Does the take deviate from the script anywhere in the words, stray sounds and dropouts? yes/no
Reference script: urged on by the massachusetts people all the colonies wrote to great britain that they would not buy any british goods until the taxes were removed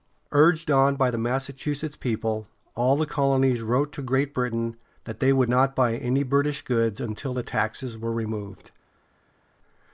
no